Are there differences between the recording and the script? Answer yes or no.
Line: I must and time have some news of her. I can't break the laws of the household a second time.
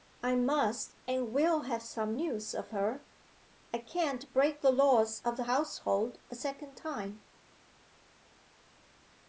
yes